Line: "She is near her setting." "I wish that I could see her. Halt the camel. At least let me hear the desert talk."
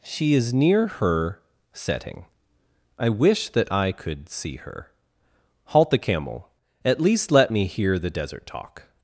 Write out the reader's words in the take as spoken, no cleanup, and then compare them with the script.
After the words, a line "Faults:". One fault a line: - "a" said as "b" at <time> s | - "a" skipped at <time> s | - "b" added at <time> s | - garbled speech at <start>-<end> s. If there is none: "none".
"She is near her setting." "I wish that I could see her. Halt the camel. At least let me hear the desert talk."
Faults:
none